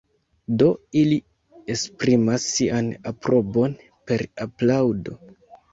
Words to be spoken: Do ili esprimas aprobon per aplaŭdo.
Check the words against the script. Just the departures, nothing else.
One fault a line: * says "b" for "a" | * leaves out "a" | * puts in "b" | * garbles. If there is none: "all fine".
* puts in "sian"